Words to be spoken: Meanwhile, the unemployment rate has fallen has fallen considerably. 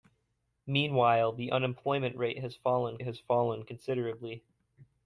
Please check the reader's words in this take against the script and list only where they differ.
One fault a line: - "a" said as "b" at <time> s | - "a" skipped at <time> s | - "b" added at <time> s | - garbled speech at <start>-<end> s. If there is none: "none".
none